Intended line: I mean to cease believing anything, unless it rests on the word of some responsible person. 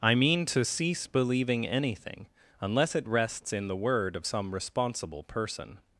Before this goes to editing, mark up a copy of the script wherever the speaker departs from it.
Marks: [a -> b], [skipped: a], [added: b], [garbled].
I mean to cease believing anything, unless it rests [on -> in] the word of some responsible person.